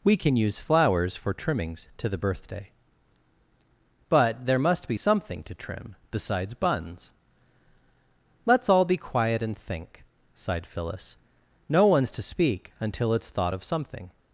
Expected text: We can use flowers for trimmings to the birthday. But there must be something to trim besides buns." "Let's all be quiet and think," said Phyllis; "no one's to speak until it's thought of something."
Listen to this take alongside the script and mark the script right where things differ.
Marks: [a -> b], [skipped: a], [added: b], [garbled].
We can use flowers for trimmings to the birthday. But there must be something to trim besides buns." "Let's all be quiet and think," [said -> sighed] Phyllis; "no one's to speak until it's thought of something."